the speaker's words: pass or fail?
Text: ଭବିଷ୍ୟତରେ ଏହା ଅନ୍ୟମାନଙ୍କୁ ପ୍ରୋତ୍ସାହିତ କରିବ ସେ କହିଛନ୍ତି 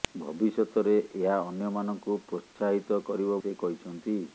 pass